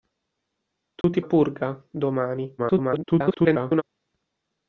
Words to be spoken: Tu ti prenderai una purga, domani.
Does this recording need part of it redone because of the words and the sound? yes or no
yes